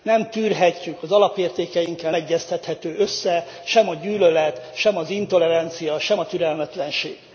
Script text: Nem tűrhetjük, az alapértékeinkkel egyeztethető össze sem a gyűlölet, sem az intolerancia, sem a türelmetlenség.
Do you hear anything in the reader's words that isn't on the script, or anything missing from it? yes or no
no